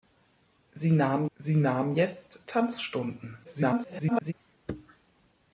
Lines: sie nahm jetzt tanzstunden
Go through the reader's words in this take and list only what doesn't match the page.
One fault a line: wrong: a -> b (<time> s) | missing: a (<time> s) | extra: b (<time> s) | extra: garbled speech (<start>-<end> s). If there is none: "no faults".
extra: sie nahm (1.4 s)
extra: garbled speech (3.4-4.3 s)